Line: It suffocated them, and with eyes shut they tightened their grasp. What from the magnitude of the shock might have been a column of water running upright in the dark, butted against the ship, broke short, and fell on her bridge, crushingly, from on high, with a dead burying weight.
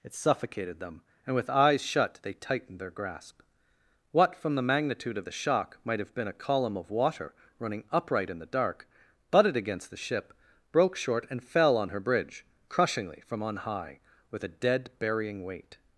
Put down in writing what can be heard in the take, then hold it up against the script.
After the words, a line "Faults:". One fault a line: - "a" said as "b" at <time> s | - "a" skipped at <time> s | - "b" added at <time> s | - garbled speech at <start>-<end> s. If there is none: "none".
It suffocated them, and with eyes shut they tightened their grasp. What from the magnitude of the shock might have been a column of water running upright in the dark, butted against the ship, broke short, and fell on her bridge, crushingly, from on high, with a dead burying weight.
Faults:
none